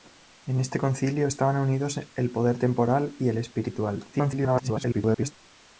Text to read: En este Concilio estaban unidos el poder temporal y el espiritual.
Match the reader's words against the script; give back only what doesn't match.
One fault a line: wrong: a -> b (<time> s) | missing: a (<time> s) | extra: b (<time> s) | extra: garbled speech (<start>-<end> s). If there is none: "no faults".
extra: garbled speech (4.1-5.3 s)